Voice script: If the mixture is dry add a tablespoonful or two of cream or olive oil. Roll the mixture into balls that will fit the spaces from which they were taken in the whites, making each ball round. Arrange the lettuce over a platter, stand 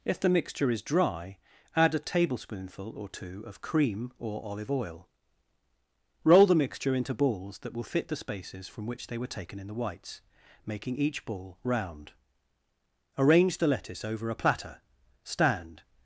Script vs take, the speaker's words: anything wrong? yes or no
no